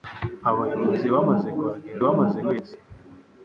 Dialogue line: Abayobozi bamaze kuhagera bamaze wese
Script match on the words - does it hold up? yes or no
yes